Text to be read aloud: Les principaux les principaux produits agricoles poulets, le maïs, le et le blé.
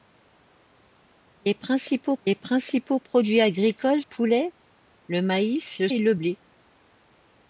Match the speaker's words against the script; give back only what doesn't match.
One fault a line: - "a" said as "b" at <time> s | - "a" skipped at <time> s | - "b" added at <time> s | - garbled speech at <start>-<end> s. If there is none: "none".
none